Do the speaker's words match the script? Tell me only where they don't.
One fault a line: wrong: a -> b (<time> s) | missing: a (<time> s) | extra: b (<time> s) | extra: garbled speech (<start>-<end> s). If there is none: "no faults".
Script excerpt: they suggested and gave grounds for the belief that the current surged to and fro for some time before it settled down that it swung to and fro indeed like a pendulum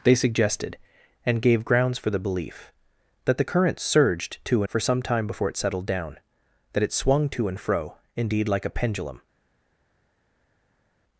missing: and fro (4.6 s)